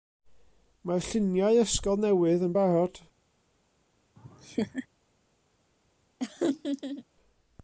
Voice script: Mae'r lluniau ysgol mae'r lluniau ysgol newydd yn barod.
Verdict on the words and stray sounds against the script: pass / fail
fail